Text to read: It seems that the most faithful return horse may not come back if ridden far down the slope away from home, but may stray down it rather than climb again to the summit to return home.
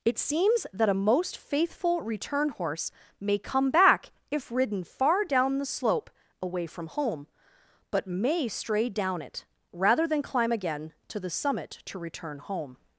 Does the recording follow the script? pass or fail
fail